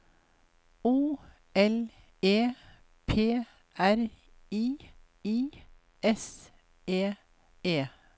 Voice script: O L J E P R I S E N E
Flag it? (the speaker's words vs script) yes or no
yes